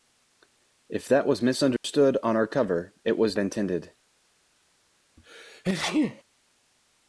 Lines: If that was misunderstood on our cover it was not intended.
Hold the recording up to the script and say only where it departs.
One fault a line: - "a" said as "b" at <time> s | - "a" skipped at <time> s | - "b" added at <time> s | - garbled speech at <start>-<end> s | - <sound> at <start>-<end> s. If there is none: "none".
- dropout at 1.8-1.8 s
- "not" skipped at 3.4 s
- sneeze at 5.2-6.2 s